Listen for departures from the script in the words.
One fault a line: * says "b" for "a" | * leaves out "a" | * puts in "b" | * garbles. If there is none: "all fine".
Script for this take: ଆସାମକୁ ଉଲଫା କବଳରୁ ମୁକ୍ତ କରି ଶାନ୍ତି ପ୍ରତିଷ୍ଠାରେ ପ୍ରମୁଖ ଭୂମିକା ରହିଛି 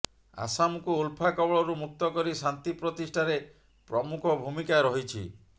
all fine